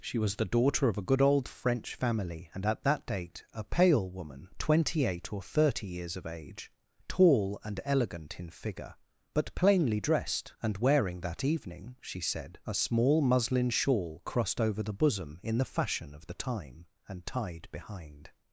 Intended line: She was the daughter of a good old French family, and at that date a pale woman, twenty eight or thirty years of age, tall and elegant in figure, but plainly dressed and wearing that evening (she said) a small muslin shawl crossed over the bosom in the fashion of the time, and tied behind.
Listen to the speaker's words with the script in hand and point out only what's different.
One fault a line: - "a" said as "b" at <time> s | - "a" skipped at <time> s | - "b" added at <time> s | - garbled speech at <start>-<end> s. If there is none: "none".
none